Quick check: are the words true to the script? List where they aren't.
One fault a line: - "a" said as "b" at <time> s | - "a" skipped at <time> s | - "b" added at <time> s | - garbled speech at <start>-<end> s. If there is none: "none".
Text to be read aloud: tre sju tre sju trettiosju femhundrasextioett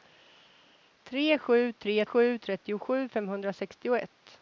none